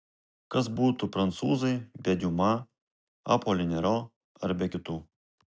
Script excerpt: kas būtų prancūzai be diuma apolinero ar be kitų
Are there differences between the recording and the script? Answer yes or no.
no